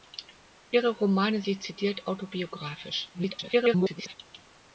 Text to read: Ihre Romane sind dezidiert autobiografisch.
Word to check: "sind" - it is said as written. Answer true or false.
false